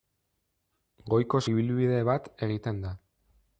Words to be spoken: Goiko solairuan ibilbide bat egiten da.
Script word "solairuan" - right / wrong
wrong